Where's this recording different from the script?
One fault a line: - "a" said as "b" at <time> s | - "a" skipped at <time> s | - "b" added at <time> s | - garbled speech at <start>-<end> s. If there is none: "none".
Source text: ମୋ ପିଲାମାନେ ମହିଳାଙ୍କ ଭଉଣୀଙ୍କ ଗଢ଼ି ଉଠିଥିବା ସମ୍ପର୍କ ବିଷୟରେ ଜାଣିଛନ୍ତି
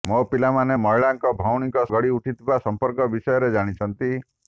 none